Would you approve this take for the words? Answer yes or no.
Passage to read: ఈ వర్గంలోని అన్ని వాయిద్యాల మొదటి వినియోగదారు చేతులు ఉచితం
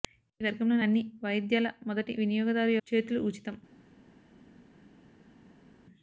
yes